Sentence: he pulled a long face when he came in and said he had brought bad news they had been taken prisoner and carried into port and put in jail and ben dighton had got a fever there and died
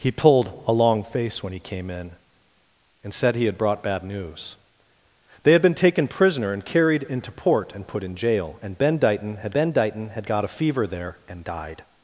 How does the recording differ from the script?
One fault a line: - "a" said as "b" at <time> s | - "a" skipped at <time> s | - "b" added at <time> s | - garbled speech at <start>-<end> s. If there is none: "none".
- "ben dighton had" added at 9.5 s